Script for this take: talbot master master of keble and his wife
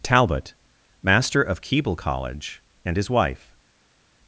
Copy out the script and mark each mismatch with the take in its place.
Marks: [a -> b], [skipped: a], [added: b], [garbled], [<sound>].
talbot master [skipped: master] of keble [added: college] and his wife